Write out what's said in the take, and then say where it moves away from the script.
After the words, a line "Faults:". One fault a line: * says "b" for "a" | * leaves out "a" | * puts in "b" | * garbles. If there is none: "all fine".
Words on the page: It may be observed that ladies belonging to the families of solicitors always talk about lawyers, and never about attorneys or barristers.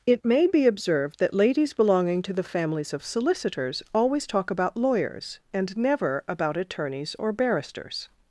It may be observed that ladies belonging to the families of solicitors always talk about lawyers, and never about attorneys or barristers.
Faults:
all fine